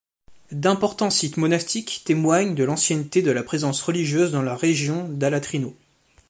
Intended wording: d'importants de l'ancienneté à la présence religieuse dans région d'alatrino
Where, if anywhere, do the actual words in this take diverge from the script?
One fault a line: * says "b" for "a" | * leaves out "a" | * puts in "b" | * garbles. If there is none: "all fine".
* puts in "sites monastiques témoignent"
* says "de" for "à"
* puts in "la"